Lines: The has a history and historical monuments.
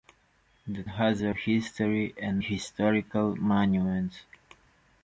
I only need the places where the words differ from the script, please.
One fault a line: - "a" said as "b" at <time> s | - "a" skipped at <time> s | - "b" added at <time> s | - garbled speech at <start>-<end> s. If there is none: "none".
none